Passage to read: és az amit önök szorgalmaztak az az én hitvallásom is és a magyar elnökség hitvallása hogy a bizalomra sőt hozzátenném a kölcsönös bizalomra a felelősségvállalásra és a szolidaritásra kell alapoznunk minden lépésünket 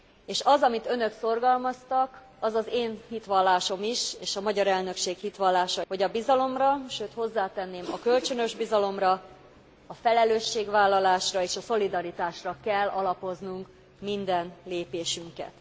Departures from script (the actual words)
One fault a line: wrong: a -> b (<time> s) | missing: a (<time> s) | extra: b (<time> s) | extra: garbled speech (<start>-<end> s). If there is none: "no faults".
no faults